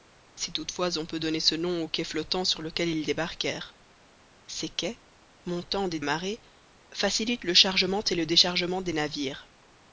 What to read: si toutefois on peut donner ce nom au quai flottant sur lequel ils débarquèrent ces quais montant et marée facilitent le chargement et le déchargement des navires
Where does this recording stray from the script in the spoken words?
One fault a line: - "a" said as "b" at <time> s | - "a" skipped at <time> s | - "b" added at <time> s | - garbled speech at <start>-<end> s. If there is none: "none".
none